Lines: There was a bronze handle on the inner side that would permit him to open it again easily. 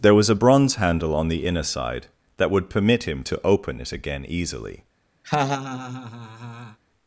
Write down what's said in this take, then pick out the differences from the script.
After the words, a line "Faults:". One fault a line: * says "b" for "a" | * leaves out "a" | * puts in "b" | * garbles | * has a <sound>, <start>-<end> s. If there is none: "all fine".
There was a bronze handle on the inner side that would permit him to open it again easily.
Faults:
* has a laugh, 5.2-6.8 s